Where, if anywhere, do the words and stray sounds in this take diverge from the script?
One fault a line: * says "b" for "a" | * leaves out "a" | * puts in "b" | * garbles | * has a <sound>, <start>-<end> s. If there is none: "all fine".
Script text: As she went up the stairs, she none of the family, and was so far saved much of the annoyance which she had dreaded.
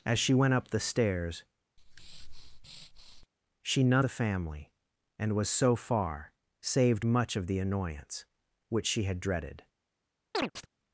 * has a breath, 1.8-3.3 s
* leaves out "of"
* has a chirp, 10.3-10.7 s